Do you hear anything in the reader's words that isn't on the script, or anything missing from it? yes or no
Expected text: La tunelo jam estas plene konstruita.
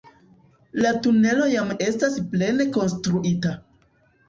no